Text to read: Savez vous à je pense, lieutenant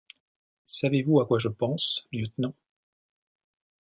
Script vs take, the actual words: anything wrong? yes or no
yes